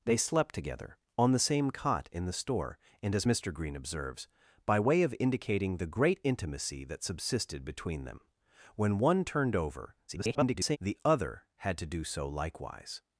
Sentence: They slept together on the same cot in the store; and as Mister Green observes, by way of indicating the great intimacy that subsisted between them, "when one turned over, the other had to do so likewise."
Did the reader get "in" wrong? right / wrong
right